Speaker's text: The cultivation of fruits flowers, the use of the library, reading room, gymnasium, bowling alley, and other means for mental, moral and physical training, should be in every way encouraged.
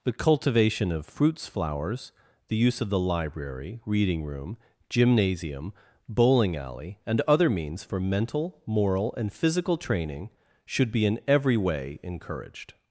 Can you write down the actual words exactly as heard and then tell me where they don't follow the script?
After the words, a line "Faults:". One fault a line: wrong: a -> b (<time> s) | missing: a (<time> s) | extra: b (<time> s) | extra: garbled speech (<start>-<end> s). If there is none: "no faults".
The cultivation of fruits flowers, the use of the library, reading room, gymnasium, bowling alley, and other means for mental, moral and physical training, should be in every way encouraged.
Faults:
no faults